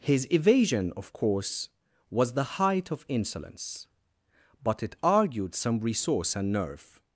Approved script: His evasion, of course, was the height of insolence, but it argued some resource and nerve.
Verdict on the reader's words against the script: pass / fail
pass